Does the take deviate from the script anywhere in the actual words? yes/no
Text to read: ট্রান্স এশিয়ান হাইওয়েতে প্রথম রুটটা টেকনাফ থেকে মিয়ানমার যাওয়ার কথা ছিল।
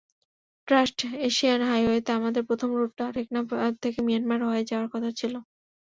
yes